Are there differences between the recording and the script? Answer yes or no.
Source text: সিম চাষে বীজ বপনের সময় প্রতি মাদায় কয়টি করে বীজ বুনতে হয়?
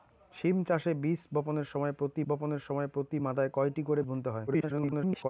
yes